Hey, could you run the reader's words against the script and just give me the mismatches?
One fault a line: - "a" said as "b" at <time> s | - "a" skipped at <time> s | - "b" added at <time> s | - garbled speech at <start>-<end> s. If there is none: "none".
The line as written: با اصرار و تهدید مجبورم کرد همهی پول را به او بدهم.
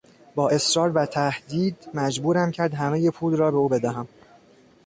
none